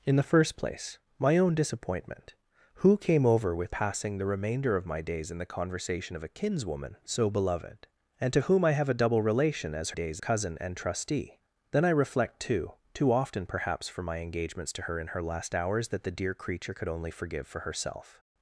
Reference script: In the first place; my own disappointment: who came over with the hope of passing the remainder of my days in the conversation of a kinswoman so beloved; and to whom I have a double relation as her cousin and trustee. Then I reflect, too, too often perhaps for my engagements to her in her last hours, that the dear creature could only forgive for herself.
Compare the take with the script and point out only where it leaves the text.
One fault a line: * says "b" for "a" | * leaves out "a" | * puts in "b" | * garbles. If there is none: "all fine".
* leaves out "the hope of"
* says "days" for "her"